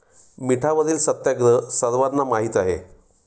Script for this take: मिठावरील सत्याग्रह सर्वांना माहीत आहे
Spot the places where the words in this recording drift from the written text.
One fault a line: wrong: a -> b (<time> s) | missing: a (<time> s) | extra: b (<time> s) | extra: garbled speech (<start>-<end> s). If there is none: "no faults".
no faults